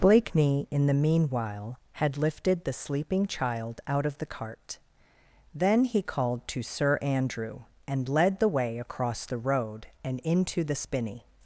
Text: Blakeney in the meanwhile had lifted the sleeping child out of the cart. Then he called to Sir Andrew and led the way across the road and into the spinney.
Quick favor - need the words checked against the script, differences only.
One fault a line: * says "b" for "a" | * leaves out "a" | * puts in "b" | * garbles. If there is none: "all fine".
all fine